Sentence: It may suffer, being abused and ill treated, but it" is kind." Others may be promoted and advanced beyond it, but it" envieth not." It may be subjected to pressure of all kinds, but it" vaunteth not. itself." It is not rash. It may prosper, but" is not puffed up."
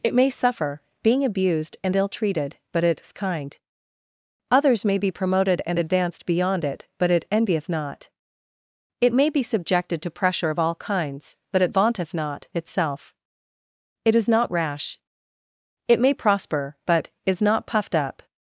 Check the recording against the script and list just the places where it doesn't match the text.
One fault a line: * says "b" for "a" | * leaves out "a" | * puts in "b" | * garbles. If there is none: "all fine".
all fine